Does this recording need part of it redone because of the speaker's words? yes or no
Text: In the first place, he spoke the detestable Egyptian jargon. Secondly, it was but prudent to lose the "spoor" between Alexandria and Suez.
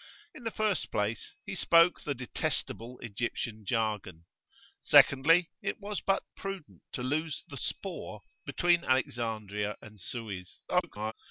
yes